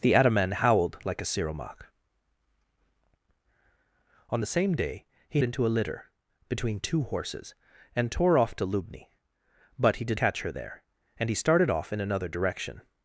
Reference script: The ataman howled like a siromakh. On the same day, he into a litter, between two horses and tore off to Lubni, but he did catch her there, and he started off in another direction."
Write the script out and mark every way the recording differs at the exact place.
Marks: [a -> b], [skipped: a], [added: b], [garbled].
The ataman howled like a siromakh. On the same day, he into a litter, between two horses and tore off to Lubni, but he did catch her there, and he started off in another direction."